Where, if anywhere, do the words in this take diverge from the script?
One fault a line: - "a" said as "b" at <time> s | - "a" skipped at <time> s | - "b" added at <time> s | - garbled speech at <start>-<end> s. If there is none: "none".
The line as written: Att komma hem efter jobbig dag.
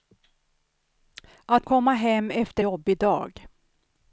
none